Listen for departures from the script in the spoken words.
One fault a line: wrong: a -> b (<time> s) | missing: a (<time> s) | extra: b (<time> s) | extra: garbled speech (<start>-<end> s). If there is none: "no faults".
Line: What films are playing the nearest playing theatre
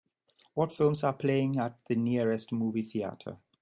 extra: at (1.6 s)
wrong: playing -> movie (2.5 s)